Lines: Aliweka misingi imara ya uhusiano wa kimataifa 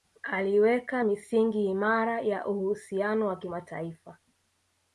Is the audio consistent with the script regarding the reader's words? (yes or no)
yes